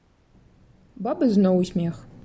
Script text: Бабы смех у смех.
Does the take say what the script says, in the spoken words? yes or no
no